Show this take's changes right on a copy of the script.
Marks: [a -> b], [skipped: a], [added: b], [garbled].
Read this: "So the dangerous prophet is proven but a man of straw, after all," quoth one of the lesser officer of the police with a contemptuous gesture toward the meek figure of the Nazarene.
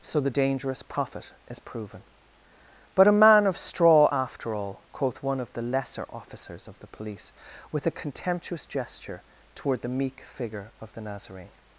"So the dangerous prophet is proven but a man of straw, after all," quoth one of the lesser [officer -> officers] of the police with a contemptuous gesture toward the meek figure of the Nazarene.